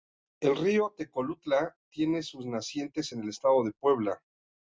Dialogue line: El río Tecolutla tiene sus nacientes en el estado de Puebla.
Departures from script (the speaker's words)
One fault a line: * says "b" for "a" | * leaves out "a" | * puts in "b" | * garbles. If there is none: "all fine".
all fine